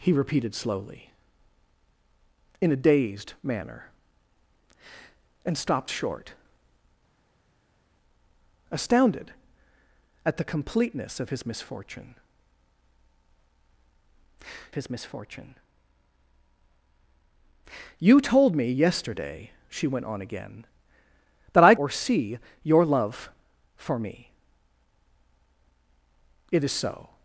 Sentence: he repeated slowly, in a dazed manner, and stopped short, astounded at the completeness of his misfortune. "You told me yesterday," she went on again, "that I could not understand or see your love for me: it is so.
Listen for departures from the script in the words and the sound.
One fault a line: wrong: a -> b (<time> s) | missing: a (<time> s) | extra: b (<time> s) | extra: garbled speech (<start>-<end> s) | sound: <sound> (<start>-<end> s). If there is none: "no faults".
extra: his misfortune (14.7 s)
missing: could not understand (21.7 s)